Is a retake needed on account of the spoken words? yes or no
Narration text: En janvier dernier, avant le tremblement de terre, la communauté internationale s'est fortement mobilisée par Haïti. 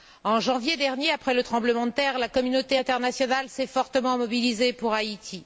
yes